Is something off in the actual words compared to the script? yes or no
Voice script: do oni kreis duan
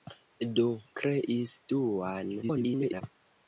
yes